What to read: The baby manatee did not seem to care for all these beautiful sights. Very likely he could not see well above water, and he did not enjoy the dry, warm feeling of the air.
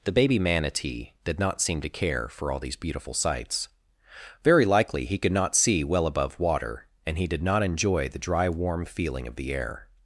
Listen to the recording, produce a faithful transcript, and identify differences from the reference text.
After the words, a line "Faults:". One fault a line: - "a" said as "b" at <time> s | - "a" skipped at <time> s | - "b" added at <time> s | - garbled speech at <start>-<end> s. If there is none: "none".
The baby manatee did not seem to care for all these beautiful sights. Very likely he could not see well above water, and he did not enjoy the dry, warm feeling of the air.
Faults:
none